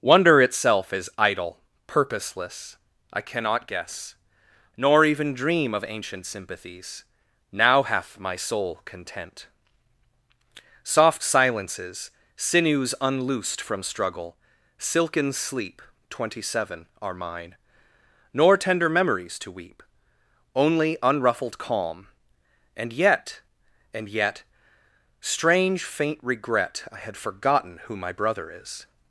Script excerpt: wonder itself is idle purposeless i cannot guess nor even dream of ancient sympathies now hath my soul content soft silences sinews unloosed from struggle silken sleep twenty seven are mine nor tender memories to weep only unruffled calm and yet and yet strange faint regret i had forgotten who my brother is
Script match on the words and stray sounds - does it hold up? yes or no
yes